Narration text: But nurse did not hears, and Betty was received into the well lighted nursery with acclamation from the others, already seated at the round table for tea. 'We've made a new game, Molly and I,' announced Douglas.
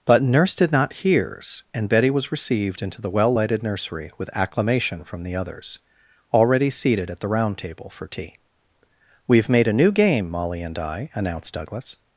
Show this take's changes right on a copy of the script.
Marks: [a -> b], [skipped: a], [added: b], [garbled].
But nurse did not hears, and Betty was received into the well lighted nursery with acclamation from the others, already seated at the round table for tea. 'We've made a new game, Molly and I,' announced Douglas.